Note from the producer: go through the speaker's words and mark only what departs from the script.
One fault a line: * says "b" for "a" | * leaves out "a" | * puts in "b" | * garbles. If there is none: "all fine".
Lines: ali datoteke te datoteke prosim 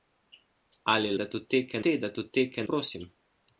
all fine